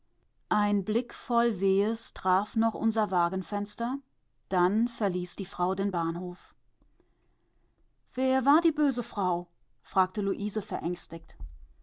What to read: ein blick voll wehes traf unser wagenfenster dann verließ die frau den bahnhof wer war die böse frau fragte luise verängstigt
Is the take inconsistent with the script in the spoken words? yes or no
yes